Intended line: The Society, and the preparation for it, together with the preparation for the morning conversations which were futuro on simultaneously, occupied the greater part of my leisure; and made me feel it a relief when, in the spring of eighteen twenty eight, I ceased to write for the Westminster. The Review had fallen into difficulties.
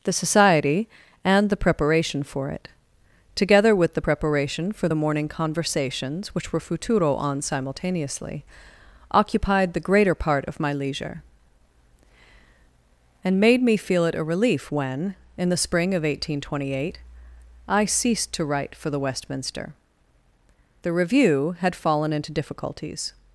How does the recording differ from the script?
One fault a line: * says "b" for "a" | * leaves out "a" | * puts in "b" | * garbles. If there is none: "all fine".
all fine